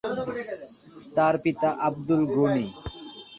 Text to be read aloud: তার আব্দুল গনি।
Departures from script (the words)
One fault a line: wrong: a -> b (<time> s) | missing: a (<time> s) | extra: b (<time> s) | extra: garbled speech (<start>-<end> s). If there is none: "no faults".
extra: পিতা (1.4 s)